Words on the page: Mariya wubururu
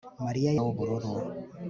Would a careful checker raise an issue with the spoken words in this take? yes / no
no